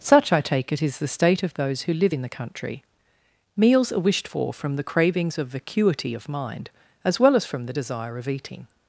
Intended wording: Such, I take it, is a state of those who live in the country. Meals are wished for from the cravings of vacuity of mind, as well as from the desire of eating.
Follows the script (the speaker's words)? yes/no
no